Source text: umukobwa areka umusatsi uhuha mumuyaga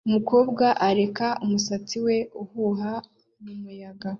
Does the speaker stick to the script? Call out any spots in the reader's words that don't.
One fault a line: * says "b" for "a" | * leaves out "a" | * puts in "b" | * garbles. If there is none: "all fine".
* puts in "we"